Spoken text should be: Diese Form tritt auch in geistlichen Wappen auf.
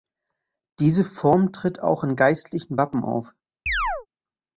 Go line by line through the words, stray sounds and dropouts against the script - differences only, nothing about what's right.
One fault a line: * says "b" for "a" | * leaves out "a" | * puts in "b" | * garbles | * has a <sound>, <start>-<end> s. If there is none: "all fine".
* has a chirp, 3.7-4.1 s